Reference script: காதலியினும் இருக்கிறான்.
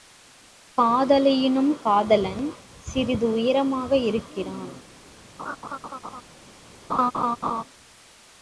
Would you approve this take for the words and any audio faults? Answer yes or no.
no